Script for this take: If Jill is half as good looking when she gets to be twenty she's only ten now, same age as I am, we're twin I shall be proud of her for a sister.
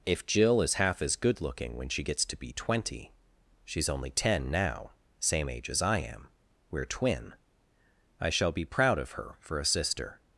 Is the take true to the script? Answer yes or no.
yes